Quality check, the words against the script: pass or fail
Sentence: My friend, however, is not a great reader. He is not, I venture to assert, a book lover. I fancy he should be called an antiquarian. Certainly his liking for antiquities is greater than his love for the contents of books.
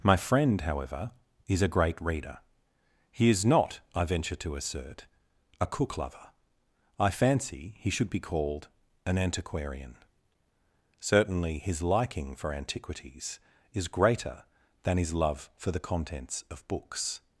fail